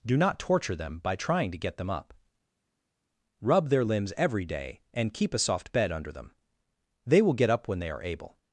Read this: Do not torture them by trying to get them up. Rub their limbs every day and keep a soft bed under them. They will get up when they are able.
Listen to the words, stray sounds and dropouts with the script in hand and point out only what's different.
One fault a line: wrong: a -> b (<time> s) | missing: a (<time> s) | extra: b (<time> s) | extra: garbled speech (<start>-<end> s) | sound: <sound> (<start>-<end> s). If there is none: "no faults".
no faults